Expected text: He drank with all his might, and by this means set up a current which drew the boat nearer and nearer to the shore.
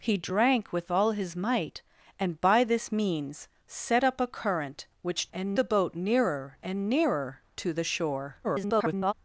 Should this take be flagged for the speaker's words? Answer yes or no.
yes